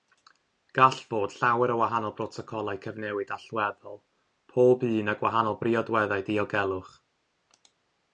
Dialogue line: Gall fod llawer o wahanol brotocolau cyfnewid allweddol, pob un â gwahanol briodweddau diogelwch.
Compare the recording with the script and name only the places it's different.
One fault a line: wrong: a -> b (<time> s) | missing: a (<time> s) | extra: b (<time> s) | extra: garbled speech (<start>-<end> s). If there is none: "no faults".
no faults